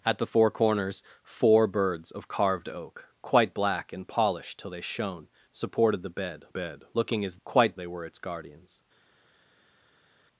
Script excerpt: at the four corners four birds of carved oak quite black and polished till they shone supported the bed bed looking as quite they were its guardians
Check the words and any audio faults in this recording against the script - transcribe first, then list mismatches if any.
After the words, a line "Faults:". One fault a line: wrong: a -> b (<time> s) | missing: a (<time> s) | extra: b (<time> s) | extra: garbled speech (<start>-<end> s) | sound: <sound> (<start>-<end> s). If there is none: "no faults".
at the four corners four birds of carved oak quite black and polished till they shone supported the bed bed looking as quite they were its guardians
Faults:
no faults